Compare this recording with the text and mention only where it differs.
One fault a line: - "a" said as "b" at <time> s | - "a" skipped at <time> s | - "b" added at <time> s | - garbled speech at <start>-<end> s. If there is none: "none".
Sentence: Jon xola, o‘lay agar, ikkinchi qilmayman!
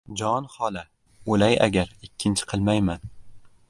none